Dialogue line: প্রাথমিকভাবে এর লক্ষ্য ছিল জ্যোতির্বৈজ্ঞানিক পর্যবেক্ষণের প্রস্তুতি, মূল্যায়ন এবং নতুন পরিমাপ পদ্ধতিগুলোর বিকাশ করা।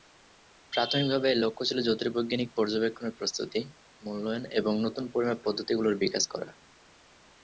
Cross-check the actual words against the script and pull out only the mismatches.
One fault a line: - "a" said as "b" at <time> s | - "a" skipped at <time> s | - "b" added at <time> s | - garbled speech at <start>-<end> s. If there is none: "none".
none